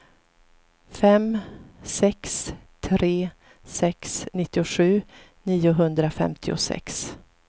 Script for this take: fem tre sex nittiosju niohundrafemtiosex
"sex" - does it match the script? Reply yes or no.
yes